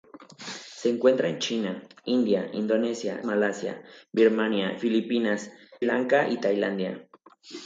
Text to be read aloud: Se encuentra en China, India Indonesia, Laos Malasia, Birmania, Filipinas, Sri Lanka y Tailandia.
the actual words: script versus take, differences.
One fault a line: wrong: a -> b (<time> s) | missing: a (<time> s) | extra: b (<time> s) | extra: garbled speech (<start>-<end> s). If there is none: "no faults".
missing: Laos (3.2 s)
missing: Sri (5.5 s)